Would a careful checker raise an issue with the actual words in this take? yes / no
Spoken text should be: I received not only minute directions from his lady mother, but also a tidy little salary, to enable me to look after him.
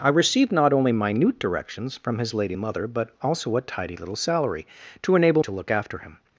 yes